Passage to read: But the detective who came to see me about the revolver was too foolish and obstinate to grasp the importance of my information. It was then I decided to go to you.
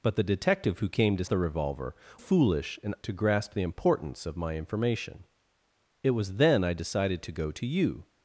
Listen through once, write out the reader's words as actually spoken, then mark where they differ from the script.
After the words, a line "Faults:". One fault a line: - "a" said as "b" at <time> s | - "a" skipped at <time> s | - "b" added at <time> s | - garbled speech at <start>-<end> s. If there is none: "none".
But the detective who came to the revolver foolish and to grasp the importance of my information. It was then I decided to go to you.
Faults:
- "see me about" skipped at 1.2 s
- "was too" skipped at 2.0 s
- "obstinate" skipped at 2.9 s